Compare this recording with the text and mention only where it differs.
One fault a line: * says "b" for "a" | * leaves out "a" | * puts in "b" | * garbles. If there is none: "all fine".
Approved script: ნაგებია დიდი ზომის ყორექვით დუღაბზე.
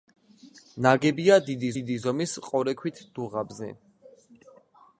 * puts in "დიდი"